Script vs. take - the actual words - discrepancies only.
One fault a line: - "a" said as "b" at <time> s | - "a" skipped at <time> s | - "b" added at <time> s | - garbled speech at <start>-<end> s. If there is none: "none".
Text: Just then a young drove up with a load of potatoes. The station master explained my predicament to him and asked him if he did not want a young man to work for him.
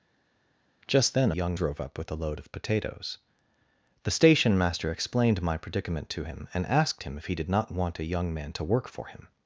none